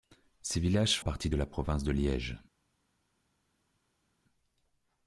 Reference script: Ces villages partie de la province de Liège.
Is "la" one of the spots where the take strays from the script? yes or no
no